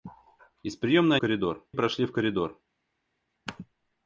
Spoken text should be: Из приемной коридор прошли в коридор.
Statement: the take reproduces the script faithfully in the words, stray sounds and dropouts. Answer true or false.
true